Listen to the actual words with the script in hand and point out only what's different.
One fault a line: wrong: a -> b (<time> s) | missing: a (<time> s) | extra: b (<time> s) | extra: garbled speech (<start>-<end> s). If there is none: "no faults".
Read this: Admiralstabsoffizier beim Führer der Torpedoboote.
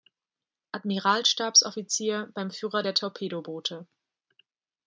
no faults